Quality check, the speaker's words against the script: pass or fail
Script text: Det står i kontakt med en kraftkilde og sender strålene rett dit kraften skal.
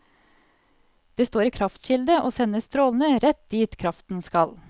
fail